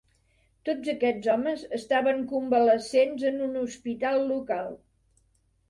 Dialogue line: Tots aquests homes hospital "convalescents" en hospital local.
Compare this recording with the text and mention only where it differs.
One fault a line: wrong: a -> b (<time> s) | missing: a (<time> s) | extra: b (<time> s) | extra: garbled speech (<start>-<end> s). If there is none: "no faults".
wrong: hospital -> estaven (1.8 s)
extra: un (3.5 s)